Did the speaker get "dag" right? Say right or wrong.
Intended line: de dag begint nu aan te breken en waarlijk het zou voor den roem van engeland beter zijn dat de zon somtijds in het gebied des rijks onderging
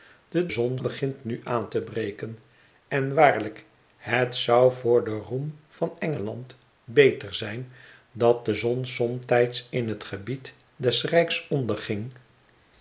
wrong